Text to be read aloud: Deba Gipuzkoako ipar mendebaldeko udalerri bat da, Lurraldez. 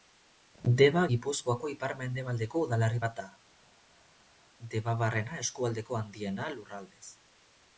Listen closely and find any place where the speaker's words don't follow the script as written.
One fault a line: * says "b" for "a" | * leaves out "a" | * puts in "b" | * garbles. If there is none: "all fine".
* puts in "Debabarrena eskualdeko handiena"